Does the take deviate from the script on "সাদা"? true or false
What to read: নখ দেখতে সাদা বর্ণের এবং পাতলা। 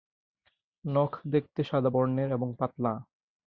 false